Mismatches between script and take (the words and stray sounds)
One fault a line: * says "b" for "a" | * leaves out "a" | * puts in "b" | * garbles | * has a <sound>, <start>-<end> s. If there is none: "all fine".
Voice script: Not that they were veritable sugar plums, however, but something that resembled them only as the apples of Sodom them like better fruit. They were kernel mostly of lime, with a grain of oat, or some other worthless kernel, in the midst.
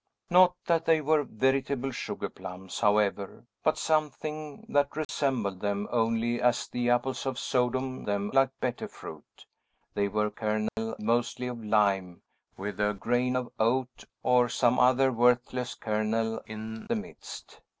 * has a dropout, 5.0-5.1 s
* has a dropout, 10.7-10.8 s